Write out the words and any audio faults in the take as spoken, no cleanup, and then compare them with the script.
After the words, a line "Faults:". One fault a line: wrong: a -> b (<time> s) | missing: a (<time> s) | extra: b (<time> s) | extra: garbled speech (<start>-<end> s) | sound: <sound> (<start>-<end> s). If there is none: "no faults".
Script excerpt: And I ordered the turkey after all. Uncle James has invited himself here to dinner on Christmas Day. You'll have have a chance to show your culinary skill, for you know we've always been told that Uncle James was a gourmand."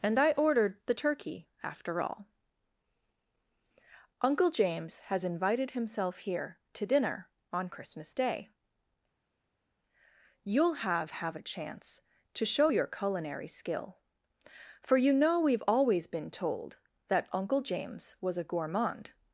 And I ordered the turkey after all. Uncle James has invited himself here to dinner on Christmas Day. You'll have have a chance to show your culinary skill, for you know we've always been told that Uncle James was a gourmand."
Faults:
no faults